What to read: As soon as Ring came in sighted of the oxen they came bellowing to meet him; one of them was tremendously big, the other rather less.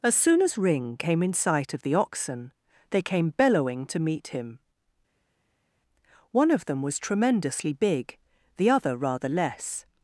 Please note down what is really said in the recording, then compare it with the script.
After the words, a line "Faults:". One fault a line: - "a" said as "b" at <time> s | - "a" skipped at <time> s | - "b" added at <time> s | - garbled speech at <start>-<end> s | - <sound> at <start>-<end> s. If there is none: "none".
As soon as Ring came in sight of the oxen they came bellowing to meet him; one of them was tremendously big, the other rather less.
Faults:
- "sighted" said as "sight" at 1.3 s